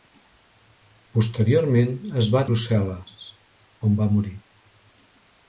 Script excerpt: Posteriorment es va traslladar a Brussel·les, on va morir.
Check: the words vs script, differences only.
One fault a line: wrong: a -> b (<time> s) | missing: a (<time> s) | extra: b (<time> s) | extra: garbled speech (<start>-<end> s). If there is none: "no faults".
missing: traslladar a (2.4 s)